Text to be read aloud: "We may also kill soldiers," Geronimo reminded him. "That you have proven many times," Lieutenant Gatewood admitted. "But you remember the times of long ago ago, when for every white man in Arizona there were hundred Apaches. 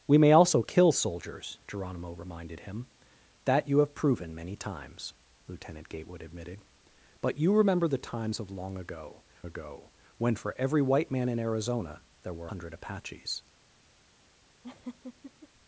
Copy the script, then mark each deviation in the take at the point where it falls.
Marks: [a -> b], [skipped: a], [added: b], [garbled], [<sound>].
"We may also kill soldiers," Geronimo reminded him. "That you have proven many times," Lieutenant Gatewood admitted. "But you remember the times of long ago ago, when for every white man in Arizona there were hundred Apaches. [laugh]